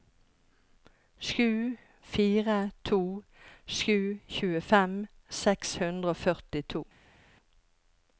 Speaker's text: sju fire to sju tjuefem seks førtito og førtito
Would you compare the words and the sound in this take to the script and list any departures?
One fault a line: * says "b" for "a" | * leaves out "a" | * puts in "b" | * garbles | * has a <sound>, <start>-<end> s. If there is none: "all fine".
* says "hundre" for "førtito"